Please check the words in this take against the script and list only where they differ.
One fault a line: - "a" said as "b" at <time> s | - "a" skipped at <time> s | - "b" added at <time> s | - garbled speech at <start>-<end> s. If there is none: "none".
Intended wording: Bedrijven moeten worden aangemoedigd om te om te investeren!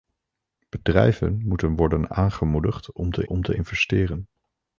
none